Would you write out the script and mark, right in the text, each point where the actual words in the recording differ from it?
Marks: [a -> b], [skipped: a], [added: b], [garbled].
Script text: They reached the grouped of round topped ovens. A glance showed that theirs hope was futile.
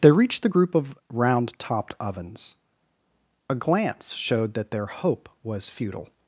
They reached the [grouped -> group] of round topped ovens. A glance showed that [theirs -> their] hope was futile.